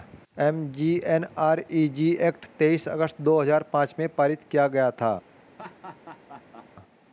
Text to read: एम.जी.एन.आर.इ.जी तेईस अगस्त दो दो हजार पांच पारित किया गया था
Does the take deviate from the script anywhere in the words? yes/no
yes